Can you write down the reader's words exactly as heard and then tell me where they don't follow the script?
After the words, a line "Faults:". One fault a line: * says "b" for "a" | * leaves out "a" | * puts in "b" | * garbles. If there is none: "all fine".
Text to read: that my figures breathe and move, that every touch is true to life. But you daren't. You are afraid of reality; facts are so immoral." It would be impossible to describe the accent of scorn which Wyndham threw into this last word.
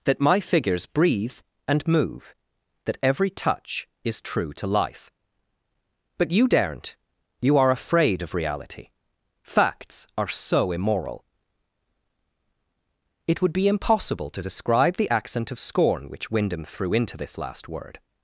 that my figures breathe and move, that every touch is true to life. But you daren't. You are afraid of reality; facts are so immoral." It would be impossible to describe the accent of scorn which Wyndham threw into this last word.
Faults:
all fine